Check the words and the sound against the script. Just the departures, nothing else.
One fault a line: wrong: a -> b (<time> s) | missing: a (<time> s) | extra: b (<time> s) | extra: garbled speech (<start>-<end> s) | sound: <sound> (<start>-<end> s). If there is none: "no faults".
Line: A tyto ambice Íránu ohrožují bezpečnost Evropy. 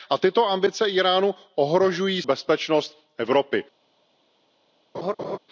sound: laugh (4.9-5.4 s)